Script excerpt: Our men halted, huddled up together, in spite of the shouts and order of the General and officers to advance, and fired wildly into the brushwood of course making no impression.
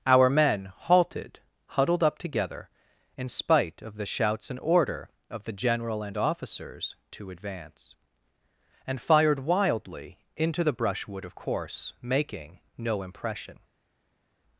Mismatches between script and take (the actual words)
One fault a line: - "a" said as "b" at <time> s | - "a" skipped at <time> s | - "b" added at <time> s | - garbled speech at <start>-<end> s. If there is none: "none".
none